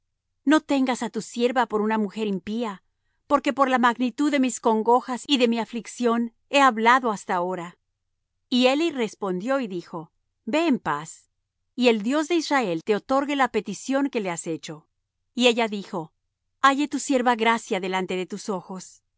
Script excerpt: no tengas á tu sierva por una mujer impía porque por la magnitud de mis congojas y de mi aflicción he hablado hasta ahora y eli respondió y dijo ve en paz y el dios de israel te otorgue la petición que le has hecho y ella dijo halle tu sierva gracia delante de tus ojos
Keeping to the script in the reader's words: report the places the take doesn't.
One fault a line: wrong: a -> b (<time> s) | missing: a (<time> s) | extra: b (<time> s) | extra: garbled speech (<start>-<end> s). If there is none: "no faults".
no faults